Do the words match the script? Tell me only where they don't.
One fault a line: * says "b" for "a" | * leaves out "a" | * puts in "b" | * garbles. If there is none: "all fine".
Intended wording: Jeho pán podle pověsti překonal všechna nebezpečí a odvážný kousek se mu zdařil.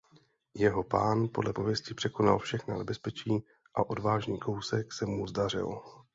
all fine